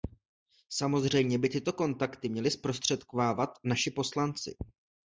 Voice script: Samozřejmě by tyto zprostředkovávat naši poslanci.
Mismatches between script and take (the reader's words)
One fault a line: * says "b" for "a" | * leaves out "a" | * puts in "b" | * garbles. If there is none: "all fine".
* puts in "kontakty měli"